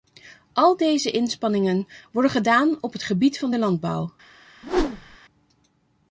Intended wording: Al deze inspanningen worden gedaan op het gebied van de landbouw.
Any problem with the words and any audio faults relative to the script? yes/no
yes